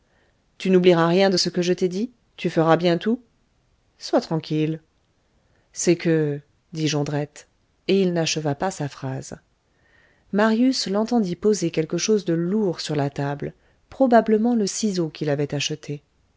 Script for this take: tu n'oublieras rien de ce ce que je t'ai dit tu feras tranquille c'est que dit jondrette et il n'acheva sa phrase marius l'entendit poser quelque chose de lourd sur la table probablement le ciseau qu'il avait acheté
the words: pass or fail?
fail